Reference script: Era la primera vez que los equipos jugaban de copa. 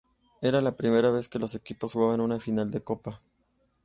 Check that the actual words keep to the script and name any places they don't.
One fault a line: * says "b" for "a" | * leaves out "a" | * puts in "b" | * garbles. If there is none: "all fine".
* puts in "una final"